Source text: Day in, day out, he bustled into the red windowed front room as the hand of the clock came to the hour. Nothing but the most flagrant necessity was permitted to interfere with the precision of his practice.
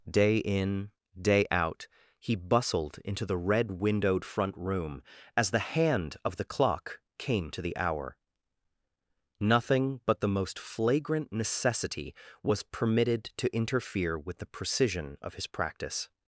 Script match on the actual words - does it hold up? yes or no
yes